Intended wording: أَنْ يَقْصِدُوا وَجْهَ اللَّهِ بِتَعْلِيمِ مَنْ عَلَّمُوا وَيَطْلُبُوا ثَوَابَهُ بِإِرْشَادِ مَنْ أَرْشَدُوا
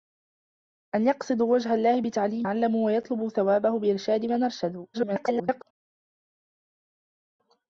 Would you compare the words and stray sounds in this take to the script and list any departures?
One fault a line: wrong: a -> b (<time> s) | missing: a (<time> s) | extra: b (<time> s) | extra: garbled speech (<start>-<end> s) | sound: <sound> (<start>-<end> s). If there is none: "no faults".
missing: مَنْ (2.5 s)
extra: garbled speech (4.9-5.6 s)